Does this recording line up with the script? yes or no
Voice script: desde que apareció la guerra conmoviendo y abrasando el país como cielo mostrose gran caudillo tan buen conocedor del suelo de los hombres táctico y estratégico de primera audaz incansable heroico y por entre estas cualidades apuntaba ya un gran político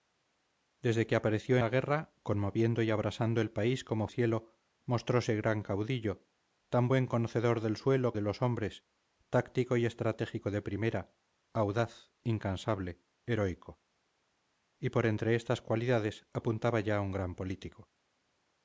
yes